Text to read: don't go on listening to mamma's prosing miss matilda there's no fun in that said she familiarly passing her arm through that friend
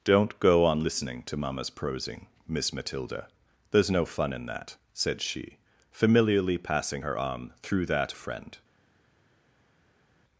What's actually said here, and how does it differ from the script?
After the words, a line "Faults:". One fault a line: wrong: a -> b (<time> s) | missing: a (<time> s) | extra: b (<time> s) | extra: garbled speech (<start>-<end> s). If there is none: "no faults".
don't go on listening to mamma's prosing miss matilda there's no fun in that said she familiarly passing her arm through that friend
Faults:
no faults